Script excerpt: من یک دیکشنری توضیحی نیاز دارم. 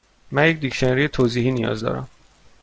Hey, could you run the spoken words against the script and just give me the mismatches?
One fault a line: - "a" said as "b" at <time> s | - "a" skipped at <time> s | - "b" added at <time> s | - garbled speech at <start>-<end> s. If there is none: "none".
none